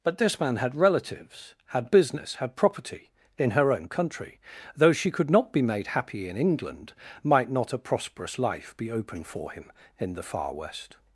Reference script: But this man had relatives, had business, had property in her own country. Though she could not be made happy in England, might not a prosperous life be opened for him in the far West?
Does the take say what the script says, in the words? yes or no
no